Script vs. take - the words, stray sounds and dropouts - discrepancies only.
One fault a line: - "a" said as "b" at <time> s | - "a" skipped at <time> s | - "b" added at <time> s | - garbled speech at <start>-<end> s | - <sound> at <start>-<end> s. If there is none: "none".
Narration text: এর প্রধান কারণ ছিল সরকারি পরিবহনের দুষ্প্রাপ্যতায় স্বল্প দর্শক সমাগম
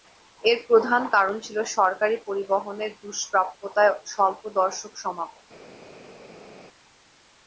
none